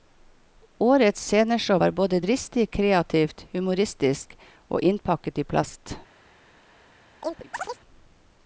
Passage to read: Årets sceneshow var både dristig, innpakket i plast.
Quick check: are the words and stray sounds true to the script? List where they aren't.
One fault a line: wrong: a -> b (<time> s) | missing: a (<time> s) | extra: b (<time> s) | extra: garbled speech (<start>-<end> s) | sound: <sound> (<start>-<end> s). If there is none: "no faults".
extra: kreativt humoristisk og (2.7 s)
sound: chirp (7.2-7.8 s)